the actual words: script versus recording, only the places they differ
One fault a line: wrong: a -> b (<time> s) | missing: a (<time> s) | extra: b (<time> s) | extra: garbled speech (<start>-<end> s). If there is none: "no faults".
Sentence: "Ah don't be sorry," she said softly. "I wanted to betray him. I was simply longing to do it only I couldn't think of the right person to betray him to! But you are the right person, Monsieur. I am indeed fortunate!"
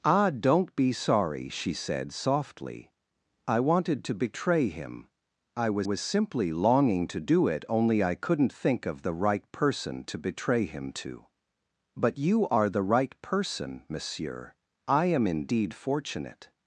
extra: was (5.8 s)